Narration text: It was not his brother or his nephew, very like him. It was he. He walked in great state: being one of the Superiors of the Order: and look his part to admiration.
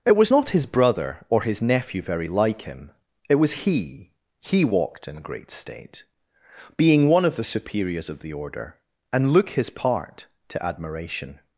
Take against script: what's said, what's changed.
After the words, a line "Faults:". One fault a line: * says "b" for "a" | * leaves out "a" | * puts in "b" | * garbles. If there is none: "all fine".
It was not his brother or his nephew, very like him. It was he. He walked in great state: being one of the Superiors of the Order: and look his part to admiration.
Faults:
all fine